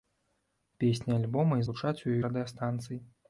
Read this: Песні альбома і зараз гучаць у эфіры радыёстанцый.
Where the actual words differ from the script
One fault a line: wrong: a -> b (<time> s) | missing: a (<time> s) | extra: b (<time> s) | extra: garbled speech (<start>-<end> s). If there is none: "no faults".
missing: зараз (1.7 s)
missing: эфіры (2.2 s)